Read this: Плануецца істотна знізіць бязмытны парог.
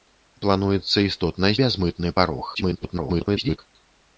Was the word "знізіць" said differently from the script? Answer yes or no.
yes